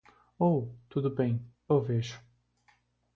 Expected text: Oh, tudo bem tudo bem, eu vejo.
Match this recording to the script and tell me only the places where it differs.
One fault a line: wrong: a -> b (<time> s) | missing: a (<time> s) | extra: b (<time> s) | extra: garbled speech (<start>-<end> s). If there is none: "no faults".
missing: tudo bem (1.4 s)